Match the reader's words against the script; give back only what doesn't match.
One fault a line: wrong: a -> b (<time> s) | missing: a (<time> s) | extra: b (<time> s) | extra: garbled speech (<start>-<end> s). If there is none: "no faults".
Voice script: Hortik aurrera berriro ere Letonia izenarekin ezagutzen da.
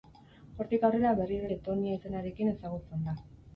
missing: ere (1.5 s)